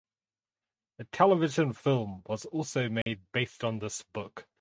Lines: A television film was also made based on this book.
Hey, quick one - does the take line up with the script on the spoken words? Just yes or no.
yes